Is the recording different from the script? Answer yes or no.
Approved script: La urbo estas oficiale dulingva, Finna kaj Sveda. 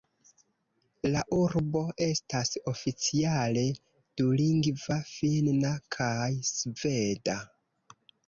no